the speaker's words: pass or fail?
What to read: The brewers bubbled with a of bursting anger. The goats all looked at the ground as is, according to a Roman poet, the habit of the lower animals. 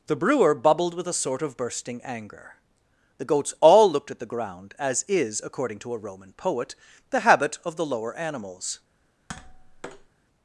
fail